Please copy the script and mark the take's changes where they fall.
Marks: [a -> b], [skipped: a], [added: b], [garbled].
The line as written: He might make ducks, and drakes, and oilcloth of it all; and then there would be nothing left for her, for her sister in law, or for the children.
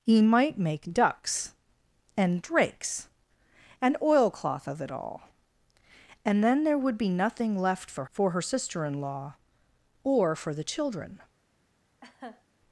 He might make ducks, and drakes, and oilcloth of it all; and then there would be nothing left for [skipped: her,] for her sister in law, or for the children.